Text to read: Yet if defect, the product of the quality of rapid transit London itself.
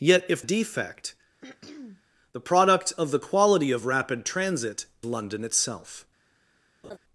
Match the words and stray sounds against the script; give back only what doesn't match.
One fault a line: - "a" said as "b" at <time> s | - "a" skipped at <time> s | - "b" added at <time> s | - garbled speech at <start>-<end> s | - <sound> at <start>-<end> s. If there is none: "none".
- throat clearing at 1.4-2.0 s
- laugh at 6.8-7.0 s